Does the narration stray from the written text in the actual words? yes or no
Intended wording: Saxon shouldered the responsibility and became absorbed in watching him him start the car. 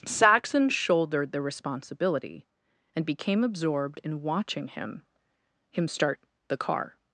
no